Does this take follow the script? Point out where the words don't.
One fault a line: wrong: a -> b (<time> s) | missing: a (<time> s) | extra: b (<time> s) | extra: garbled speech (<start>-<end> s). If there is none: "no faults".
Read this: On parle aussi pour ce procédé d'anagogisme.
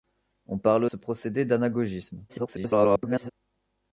missing: aussi pour (0.8 s)
extra: garbled speech (2.3-3.3 s)